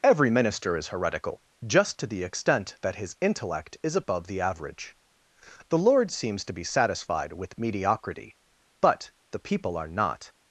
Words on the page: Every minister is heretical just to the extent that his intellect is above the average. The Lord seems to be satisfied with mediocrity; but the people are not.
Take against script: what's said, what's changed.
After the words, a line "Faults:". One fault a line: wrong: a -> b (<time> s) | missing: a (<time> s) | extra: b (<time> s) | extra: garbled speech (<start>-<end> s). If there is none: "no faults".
Every minister is heretical just to the extent that his intellect is above the average. The Lord seems to be satisfied with mediocrity; but the people are not.
Faults:
no faults